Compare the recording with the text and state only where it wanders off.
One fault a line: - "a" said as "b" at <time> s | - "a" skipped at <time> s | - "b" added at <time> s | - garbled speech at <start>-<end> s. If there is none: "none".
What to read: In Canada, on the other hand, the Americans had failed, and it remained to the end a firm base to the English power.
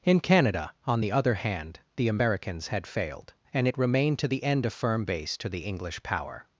none